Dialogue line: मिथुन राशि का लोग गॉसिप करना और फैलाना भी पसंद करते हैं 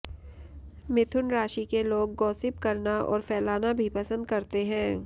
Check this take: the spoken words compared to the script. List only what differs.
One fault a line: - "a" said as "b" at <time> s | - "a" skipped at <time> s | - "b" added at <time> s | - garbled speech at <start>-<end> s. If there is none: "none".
- "का" said as "के" at 1.6 s